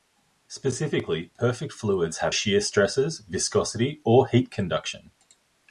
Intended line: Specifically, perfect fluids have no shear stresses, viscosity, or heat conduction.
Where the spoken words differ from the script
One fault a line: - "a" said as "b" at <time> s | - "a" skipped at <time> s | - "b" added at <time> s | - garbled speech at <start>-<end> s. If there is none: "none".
- "no" skipped at 2.4 s